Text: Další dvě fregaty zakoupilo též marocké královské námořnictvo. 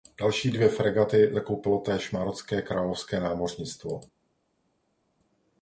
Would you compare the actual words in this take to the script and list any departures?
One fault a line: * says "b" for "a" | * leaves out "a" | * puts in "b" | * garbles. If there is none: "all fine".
all fine